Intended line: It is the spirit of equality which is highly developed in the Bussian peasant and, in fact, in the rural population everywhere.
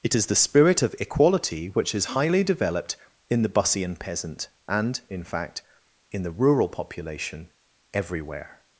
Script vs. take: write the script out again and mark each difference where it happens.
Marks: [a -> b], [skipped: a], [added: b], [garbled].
It is the spirit of equality which is highly developed in the Bussian peasant and, in fact, in the rural population everywhere.